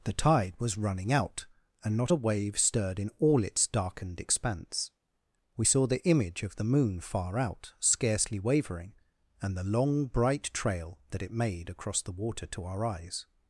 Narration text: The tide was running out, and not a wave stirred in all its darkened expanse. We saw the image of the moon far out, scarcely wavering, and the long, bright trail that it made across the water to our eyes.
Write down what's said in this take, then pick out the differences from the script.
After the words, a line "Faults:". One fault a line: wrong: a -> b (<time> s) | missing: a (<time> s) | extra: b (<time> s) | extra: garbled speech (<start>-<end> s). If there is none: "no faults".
The tide was running out, and not a wave stirred in all its darkened expanse. We saw the image of the moon far out, scarcely wavering, and the long, bright trail that it made across the water to our eyes.
Faults:
no faults